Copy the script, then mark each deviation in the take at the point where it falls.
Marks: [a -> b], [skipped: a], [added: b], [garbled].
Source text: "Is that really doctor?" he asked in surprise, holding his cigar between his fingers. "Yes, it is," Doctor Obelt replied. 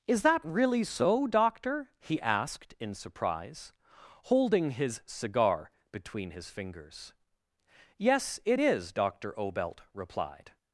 "Is that really [added: so] doctor?" he asked in surprise, holding his cigar between his fingers. "Yes, it is," Doctor Obelt replied.